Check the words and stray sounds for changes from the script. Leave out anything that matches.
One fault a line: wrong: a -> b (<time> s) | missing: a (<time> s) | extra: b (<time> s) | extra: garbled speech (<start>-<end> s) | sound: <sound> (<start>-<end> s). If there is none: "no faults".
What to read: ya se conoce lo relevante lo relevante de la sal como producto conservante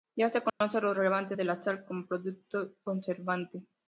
sound: dropout (0.5-0.6 s)
missing: lo relevante (1.4 s)